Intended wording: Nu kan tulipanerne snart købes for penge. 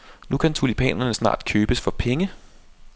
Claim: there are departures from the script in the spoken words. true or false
false